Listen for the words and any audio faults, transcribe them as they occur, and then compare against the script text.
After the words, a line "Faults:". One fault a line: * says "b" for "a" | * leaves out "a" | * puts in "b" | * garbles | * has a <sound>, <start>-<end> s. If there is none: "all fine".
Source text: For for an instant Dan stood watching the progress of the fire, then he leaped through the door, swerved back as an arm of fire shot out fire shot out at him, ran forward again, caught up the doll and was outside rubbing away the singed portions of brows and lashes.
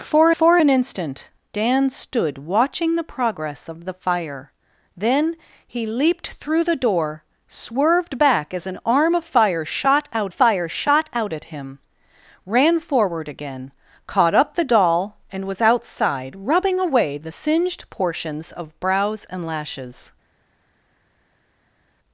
For for an instant Dan stood watching the progress of the fire, then he leaped through the door, swerved back as an arm of fire shot out fire shot out at him, ran forward again, caught up the doll and was outside rubbing away the singed portions of brows and lashes.
Faults:
all fine